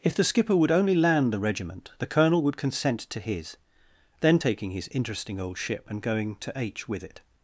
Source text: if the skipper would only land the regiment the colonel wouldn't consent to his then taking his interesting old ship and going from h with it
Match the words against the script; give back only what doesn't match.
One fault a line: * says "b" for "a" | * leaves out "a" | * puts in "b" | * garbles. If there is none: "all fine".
* says "would" for "wouldn't"
* says "to" for "from"